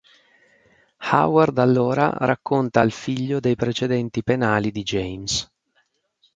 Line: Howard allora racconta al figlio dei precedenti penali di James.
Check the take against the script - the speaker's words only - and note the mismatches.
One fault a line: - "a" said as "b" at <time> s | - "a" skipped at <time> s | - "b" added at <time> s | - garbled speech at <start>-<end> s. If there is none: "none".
none